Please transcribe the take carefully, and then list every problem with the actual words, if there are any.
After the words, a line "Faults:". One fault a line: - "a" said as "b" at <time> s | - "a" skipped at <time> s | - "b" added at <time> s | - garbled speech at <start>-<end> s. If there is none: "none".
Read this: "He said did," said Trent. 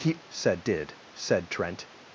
"He said did," said Trent.
Faults:
none